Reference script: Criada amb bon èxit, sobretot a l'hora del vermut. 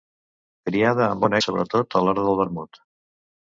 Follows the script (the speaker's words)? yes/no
no